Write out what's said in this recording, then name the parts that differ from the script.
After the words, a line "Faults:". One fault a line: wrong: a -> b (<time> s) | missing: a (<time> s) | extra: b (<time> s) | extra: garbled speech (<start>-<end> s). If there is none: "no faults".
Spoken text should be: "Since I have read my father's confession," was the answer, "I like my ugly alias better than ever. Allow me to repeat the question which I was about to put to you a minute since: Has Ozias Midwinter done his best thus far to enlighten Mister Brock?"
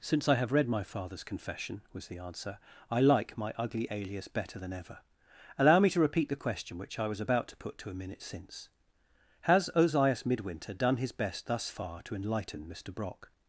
"Since I have read my father's confession," was the answer, "I like my ugly alias better than ever. Allow me to repeat the question which I was about to put to a minute since: Has Ozias Midwinter done his best thus far to enlighten Mister Brock?"
Faults:
missing: you (7.9 s)